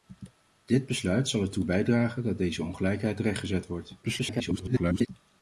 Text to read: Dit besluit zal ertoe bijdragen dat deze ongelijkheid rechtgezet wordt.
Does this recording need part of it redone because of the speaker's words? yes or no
yes